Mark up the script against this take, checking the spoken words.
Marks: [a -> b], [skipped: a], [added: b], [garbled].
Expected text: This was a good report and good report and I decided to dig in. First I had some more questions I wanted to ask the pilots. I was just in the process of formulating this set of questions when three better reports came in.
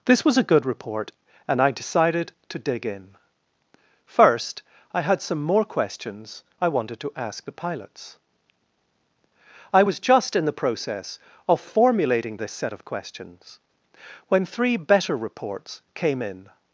This was a good report and [skipped: good report and] I decided to dig in. First I had some more questions I wanted to ask the pilots. I was just in the process of formulating this set of questions when three better reports came in.